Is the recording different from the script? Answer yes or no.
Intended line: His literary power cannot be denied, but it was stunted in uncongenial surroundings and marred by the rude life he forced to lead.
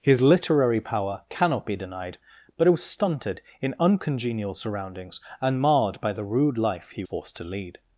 no